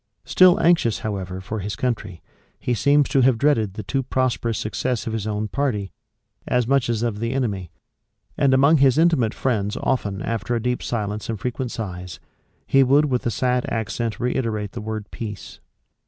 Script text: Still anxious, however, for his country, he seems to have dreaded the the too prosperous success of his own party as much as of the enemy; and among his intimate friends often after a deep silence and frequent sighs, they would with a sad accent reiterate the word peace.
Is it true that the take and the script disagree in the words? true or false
true